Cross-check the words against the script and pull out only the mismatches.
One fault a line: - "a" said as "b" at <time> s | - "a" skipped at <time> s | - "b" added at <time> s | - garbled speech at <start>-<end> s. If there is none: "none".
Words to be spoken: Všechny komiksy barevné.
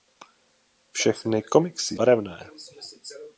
none